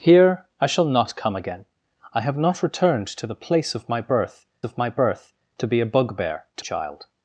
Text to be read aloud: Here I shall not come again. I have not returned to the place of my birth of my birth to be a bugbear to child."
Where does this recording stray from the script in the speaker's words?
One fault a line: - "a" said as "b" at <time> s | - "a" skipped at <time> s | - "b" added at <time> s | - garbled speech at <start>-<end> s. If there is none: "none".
none